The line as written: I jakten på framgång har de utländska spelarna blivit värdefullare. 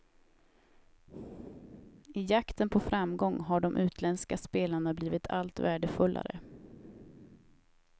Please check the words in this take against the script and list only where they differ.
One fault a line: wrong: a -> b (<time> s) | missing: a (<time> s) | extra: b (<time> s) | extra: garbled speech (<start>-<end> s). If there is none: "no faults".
extra: allt (5.3 s)